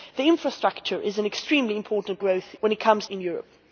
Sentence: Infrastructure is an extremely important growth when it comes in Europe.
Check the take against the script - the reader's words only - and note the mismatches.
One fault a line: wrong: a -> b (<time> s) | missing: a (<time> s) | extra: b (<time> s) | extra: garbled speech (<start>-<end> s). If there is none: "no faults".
no faults